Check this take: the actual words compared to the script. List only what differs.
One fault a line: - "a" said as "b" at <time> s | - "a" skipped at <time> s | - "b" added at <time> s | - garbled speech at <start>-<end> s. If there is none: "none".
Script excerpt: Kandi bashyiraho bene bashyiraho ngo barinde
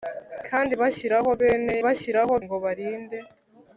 none